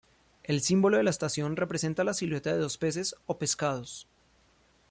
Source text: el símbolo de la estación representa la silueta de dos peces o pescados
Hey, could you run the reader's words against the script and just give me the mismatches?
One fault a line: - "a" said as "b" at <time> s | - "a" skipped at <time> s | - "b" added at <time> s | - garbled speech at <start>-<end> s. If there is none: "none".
none